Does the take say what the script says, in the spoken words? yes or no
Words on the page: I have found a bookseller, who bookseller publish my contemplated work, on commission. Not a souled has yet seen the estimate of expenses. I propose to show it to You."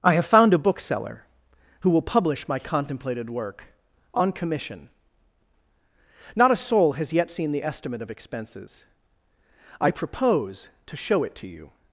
no